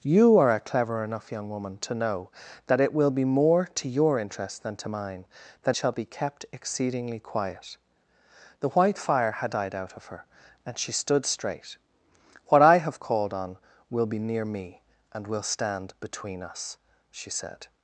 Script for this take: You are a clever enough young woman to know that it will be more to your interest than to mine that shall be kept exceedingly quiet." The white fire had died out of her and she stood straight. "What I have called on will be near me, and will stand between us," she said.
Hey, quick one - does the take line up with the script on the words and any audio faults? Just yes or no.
yes